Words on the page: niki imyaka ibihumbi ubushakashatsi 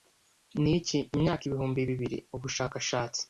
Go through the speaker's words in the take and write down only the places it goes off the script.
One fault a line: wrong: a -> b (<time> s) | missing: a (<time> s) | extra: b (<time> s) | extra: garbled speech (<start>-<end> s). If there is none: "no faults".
extra: bibiri (1.9 s)